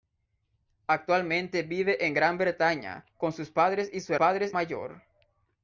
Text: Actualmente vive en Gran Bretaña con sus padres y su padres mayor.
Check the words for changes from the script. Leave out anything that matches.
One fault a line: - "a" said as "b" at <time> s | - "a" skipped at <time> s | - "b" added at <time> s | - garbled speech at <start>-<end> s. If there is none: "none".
none